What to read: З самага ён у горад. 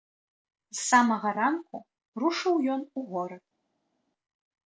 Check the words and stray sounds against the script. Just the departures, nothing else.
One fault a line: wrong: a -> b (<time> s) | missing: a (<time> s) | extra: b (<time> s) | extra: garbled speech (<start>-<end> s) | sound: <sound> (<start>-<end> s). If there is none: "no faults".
extra: ранку рушыў (1.4 s)